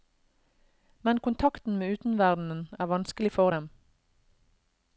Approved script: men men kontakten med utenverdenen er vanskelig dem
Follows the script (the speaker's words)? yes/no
no